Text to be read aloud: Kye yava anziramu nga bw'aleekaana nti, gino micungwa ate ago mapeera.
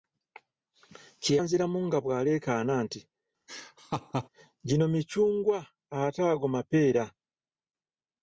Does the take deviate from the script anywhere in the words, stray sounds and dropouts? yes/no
yes